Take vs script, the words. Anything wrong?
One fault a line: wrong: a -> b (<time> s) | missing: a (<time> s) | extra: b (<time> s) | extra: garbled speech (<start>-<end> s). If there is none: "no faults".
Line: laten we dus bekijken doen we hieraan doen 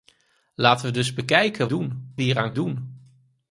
no faults